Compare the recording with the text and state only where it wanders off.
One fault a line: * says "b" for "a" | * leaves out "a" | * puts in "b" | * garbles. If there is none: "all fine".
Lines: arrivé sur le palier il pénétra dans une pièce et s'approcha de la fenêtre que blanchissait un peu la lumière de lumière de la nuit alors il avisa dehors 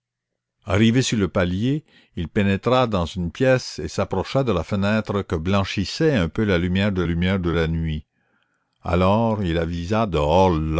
all fine